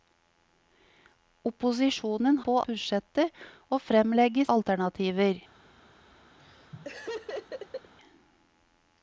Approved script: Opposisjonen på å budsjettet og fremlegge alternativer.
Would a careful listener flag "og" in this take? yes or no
no